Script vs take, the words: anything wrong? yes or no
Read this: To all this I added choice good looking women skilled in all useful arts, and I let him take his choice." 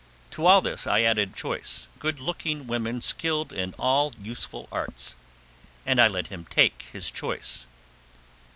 no